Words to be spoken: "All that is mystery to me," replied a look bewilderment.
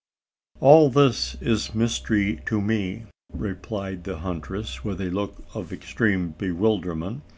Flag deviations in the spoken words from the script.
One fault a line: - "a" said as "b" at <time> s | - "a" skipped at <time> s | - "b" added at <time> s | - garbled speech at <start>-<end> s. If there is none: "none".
- "that" said as "this" at 0.9 s
- "the huntress with" added at 4.0 s
- "of extreme" added at 5.5 s